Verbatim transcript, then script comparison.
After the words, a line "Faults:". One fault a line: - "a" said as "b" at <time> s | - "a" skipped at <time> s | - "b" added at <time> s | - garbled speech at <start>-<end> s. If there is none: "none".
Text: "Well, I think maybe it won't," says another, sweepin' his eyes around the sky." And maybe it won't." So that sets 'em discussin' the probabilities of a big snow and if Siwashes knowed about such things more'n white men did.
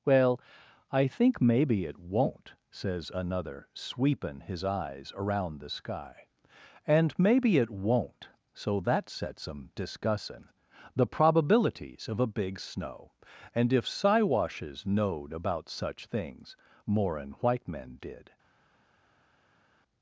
"Well, I think maybe it won't," says another, sweepin' his eyes around the sky." And maybe it won't." So that sets 'em discussin' the probabilities of a big snow and if Siwashes knowed about such things more'n white men did.
Faults:
none